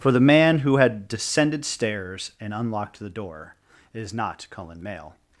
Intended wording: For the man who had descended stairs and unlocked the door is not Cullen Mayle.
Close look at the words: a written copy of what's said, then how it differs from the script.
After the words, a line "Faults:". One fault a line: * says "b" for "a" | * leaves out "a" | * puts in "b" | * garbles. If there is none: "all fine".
For the man who had descended stairs and unlocked the door is not Cullen Mayle.
Faults:
all fine